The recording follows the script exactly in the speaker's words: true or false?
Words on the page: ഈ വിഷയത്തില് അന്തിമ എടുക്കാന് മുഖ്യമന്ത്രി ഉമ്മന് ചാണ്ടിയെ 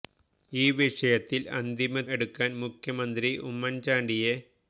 true